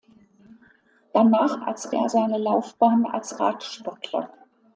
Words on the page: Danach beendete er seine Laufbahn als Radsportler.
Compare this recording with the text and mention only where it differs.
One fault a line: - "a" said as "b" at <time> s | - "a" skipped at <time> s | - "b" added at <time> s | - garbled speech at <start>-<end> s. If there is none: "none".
- "beendete" said as "als" at 1.6 s